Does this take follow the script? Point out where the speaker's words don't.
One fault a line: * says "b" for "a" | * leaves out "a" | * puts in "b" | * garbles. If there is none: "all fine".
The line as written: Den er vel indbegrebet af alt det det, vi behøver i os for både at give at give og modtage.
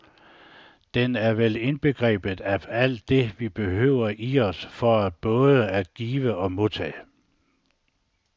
* leaves out "det"
* leaves out "at give"